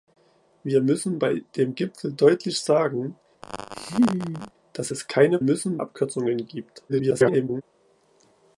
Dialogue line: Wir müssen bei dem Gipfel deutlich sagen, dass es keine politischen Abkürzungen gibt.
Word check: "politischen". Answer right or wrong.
wrong